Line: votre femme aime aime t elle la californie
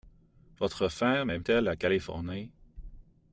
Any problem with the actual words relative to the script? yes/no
yes